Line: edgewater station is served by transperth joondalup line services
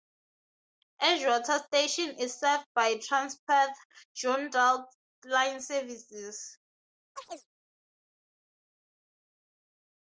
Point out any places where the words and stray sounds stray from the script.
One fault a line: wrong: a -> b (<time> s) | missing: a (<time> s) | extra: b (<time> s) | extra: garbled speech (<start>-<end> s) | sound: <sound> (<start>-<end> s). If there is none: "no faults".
sound: chirp (7.2-7.5 s)